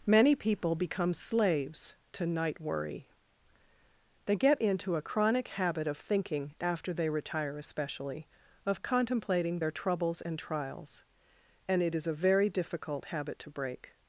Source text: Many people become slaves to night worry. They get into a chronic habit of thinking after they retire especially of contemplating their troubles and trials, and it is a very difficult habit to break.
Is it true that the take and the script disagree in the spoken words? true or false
false